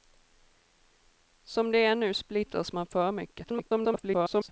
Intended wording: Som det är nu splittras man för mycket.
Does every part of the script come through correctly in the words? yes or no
no